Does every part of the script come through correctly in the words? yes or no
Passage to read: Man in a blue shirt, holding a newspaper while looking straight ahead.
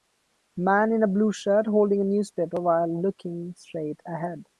yes